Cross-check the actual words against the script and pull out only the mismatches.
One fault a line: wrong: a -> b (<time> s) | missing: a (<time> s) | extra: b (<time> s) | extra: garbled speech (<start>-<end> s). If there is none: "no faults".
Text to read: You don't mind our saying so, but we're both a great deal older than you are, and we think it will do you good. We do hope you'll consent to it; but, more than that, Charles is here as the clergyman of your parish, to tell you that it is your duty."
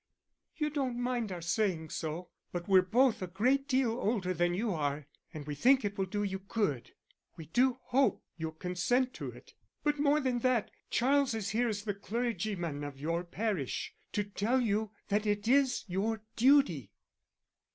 no faults